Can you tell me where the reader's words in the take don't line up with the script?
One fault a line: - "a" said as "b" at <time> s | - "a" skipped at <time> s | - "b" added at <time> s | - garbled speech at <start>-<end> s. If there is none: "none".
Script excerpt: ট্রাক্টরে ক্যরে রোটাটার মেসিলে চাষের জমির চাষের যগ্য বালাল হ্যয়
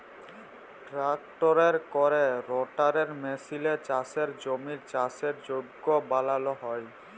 none